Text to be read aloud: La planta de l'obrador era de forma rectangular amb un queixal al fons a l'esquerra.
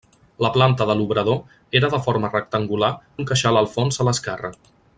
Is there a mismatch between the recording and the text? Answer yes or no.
yes